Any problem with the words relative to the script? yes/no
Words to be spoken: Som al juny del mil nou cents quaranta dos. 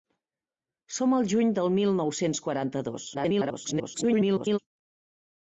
yes